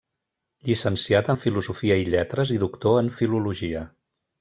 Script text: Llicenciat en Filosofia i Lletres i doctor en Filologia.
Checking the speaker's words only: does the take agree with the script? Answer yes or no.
yes